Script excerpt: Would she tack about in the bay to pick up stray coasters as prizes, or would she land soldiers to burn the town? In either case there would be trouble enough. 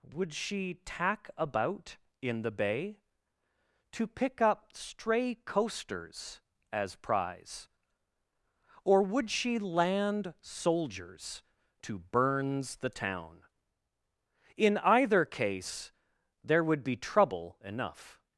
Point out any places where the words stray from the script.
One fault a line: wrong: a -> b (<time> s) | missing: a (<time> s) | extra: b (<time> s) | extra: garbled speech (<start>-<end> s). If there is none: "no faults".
wrong: prizes -> prize (7.0 s)
wrong: burn -> burns (12.0 s)